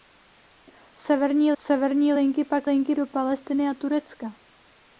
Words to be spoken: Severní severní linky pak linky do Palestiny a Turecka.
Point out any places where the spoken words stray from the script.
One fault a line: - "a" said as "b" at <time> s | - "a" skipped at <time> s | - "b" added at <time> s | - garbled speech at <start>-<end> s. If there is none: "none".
none